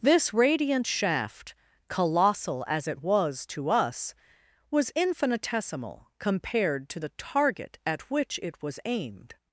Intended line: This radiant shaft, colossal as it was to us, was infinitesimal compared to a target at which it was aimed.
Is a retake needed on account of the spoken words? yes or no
yes